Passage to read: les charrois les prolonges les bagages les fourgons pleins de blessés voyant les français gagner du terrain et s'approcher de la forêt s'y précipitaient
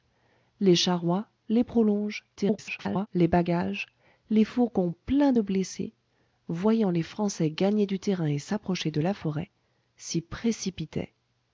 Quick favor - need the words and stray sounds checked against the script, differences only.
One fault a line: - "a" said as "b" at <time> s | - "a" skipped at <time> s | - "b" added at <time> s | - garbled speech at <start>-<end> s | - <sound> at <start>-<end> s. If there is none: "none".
- garbled speech at 2.4-3.1 s